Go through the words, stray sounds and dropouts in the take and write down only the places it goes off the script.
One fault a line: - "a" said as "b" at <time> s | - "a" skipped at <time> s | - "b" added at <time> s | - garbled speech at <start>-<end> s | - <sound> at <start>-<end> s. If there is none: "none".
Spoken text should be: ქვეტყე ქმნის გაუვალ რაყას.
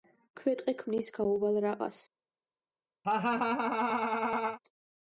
- laugh at 3.0-4.6 s